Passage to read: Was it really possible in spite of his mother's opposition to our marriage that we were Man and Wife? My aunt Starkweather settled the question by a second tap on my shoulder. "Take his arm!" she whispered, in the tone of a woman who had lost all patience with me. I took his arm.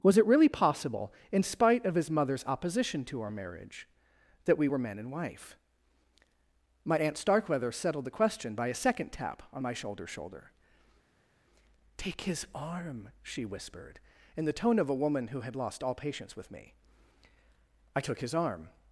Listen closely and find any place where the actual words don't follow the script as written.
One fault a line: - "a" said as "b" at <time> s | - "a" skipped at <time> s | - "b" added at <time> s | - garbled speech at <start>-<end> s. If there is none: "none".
- "shoulder" added at 10.1 s